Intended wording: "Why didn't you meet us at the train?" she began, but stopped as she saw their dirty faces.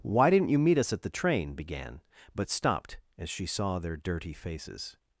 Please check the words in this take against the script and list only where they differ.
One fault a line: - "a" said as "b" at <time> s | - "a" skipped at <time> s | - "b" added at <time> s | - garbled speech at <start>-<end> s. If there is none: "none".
- "she" skipped at 1.5 s